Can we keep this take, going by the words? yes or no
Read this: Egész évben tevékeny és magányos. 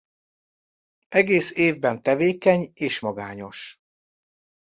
yes